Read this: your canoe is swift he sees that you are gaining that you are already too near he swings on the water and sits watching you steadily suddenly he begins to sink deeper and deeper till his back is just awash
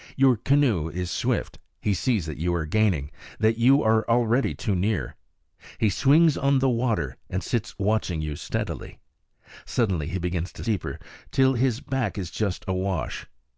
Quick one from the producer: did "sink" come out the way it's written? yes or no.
no